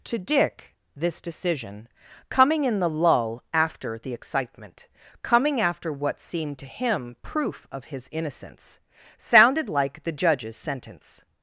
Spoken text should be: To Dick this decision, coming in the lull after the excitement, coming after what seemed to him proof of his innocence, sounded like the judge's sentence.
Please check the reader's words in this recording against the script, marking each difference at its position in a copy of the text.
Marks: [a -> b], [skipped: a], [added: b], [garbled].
To Dick this decision, coming in the lull after the excitement, coming after what seemed to him proof of his innocence, sounded like the judge's sentence.